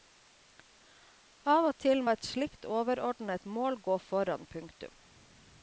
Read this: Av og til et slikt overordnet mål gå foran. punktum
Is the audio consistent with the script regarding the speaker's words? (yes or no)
yes